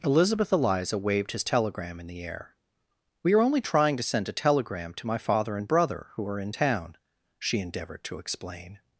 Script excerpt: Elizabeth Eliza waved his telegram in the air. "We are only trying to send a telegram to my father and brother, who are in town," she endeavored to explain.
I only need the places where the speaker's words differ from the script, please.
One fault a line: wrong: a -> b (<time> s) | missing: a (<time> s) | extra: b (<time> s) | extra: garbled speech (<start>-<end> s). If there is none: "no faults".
no faults